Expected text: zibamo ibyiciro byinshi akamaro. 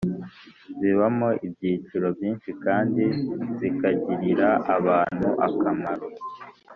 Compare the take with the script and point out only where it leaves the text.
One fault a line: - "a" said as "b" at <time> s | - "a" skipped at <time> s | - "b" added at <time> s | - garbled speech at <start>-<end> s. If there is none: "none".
- "kandi zikagirira abantu" added at 2.6 s